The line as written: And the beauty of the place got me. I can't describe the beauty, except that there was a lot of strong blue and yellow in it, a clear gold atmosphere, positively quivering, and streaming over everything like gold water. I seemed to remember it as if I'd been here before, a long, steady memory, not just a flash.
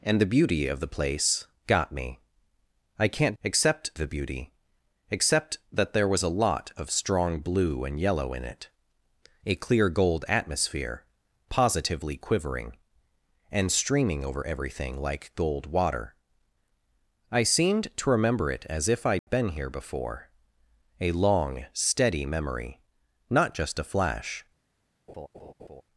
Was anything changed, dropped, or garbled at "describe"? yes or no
yes